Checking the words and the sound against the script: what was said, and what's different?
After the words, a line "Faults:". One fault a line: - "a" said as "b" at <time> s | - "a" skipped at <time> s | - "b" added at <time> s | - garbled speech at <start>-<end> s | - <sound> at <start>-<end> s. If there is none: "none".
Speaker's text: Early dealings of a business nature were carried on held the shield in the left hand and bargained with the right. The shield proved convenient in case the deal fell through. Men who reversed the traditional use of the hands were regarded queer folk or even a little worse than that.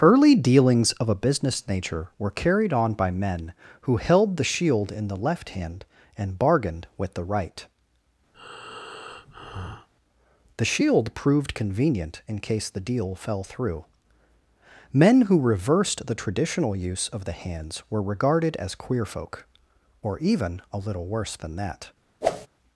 Early dealings of a business nature were carried on by men who held the shield in the left hand and bargained with the right. The shield proved convenient in case the deal fell through. Men who reversed the traditional use of the hands were regarded as queer folk or even a little worse than that.
Faults:
- "by men who" added at 3.0 s
- breath at 8.3-9.9 s
- "as" added at 18.6 s
- whoosh at 22.2-22.5 s